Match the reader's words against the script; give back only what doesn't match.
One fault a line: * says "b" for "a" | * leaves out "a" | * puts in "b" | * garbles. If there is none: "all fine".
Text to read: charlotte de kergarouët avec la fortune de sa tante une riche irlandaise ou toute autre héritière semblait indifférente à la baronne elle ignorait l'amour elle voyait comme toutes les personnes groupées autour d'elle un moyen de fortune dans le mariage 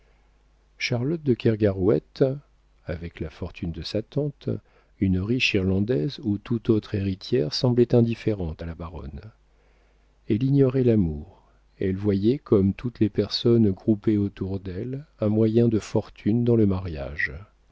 all fine